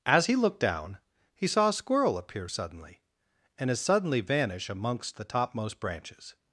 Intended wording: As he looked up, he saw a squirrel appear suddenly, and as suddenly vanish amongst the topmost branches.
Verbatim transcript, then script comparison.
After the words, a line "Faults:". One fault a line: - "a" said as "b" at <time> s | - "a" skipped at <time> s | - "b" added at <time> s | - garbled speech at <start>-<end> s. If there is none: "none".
As he looked down, he saw a squirrel appear suddenly, and as suddenly vanish amongst the topmost branches.
Faults:
- "up" said as "down" at 0.6 s